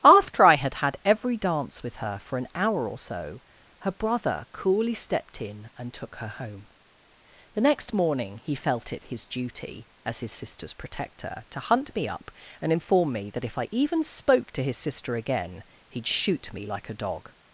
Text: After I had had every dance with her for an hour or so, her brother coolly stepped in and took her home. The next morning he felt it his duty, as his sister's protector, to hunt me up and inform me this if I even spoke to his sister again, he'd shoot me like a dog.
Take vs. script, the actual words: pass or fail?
fail